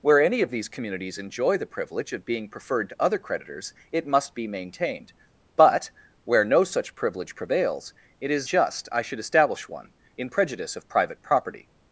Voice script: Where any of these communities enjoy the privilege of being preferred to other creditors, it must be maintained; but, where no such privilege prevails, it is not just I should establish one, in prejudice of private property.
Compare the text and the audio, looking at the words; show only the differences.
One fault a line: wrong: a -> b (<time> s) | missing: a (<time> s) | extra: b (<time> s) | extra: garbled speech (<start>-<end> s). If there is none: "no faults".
missing: not (8.5 s)